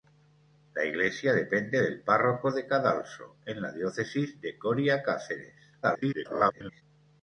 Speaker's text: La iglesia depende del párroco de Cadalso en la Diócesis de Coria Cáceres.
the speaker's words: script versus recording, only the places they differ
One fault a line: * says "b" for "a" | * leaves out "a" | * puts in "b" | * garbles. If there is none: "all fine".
* garbles